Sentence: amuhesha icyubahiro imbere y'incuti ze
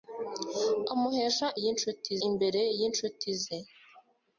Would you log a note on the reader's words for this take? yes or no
yes